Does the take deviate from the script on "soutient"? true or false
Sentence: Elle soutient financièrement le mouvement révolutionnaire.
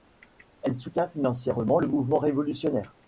false